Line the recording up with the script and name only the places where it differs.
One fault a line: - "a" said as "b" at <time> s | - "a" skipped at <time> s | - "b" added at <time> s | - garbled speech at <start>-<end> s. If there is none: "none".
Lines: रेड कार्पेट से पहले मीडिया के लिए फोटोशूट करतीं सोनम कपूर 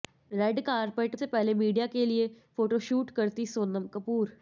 none